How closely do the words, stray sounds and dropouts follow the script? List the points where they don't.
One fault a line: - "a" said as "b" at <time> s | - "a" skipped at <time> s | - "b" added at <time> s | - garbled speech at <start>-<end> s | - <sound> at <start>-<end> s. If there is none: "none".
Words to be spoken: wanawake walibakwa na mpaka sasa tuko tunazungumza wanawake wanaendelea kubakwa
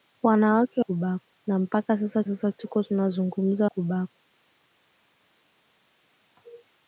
- "walibakwa" said as "kubakwa" at 0.8 s
- "sasa" added at 2.2 s
- "wanawake wanaendelea" skipped at 3.7 s